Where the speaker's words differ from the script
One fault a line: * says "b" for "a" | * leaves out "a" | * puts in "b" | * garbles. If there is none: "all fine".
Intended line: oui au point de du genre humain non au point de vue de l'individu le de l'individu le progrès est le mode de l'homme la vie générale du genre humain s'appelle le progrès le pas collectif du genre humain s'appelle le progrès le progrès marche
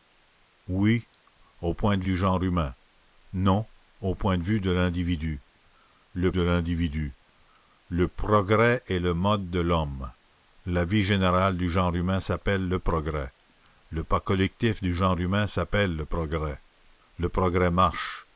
all fine